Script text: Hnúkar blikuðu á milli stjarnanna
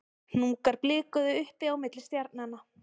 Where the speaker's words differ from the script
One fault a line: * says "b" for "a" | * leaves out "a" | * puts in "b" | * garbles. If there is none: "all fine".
* puts in "uppi"